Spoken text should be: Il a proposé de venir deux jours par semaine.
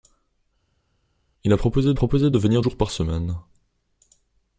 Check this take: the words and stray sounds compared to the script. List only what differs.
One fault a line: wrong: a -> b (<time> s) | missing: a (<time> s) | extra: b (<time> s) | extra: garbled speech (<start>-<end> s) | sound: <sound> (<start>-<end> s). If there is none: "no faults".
extra: proposé (1.9 s)
missing: deux (2.6 s)